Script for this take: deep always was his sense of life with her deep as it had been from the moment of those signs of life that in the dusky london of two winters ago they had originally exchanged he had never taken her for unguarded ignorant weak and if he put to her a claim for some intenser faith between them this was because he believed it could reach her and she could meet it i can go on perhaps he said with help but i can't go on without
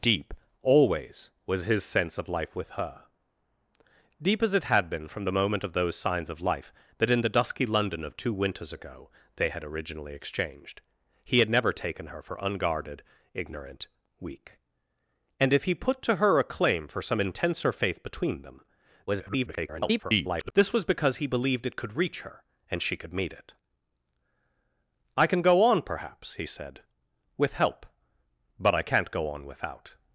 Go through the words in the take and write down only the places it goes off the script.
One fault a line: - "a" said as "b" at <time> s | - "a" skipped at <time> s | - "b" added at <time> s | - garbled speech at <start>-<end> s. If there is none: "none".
- garbled speech at 19.1-20.5 s